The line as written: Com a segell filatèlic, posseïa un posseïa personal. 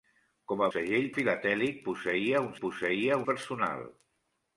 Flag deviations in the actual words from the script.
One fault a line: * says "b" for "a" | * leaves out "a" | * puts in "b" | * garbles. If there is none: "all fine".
all fine